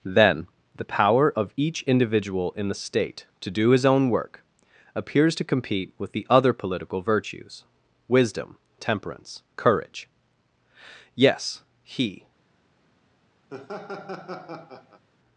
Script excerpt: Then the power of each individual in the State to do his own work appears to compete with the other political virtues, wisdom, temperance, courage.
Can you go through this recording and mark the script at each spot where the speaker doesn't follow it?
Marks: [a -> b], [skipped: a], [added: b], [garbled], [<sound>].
Then the power of each individual in the State to do his own work appears to compete with the other political virtues, wisdom, temperance, courage. [added: Yes he] [laugh]